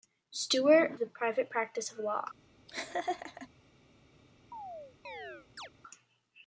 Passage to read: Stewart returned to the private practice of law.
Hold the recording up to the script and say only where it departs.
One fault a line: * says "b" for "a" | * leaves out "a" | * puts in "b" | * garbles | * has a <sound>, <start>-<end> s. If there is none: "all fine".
* leaves out "returned to"
* has a laugh, 2.7-3.5 s
* has a chirp, 4.5-5.7 s